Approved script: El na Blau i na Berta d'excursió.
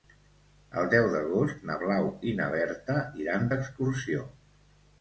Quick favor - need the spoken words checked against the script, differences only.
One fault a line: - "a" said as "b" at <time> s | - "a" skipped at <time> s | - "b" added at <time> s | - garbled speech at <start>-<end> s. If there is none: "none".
- "deu d'agost" added at 0.9 s
- "iran" added at 3.3 s